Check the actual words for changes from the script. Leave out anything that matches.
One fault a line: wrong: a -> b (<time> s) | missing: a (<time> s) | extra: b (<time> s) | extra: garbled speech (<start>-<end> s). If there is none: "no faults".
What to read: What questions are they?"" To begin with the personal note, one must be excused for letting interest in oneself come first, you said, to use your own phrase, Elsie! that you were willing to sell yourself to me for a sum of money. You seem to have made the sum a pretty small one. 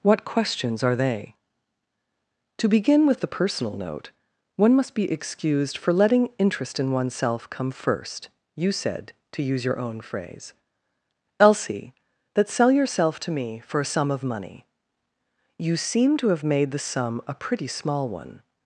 missing: you were willing to (12.5 s)